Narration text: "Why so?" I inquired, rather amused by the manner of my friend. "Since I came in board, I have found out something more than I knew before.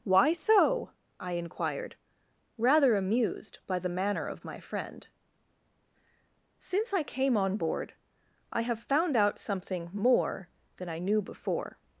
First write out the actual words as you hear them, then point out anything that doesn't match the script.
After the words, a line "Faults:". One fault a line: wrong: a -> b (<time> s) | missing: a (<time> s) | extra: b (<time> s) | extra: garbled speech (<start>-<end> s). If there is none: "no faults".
"Why so?" I inquired, rather amused by the manner of my friend. "Since I came on board, I have found out something more than I knew before.
Faults:
wrong: in -> on (7.4 s)